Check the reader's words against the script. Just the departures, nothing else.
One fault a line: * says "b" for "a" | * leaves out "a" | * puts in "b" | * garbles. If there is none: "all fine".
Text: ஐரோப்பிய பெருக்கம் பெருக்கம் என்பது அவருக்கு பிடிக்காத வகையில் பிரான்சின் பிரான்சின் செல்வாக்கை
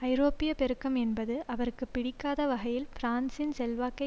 * leaves out "பெருக்கம்"
* leaves out "பிரான்சின்"